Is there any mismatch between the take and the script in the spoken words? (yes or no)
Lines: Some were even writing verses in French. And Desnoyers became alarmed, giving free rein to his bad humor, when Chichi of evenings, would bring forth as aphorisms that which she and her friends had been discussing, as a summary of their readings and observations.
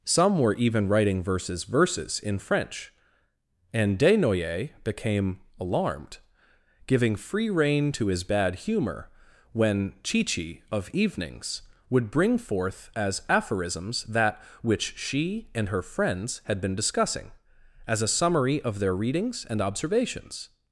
yes